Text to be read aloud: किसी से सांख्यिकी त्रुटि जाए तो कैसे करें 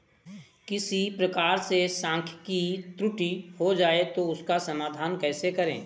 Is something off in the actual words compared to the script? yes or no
yes